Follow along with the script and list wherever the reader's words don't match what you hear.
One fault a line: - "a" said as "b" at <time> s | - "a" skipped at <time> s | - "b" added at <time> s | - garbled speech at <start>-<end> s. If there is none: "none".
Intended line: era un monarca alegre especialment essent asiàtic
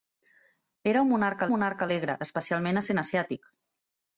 - "monarca" added at 1.5 s